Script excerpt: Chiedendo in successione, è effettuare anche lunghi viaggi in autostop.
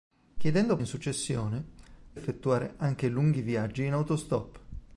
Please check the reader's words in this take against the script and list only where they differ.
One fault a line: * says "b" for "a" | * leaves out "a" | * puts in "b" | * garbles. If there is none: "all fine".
all fine